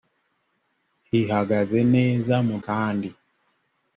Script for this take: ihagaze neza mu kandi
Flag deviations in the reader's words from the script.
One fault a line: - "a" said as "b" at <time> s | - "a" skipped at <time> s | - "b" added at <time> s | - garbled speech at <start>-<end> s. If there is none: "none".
none